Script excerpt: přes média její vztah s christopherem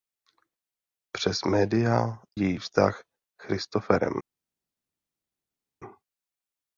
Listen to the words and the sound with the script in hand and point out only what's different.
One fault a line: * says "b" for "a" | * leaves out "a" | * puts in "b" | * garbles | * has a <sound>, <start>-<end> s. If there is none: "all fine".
all fine